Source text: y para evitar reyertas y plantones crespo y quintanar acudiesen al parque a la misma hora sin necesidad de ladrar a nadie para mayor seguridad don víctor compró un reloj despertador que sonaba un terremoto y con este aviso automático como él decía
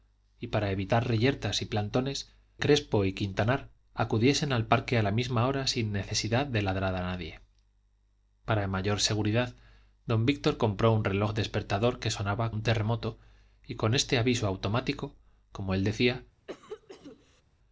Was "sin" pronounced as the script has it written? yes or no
yes